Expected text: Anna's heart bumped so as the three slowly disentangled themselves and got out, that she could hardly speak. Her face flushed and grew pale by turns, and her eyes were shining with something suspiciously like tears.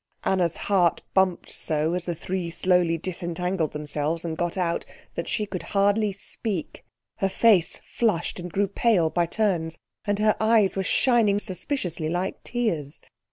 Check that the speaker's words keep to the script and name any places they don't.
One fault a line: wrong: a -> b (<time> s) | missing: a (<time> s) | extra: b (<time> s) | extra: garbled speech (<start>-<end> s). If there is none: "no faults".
missing: with something (11.4 s)